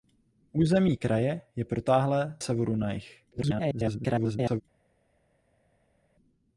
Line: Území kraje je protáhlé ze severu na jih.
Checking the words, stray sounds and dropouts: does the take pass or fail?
fail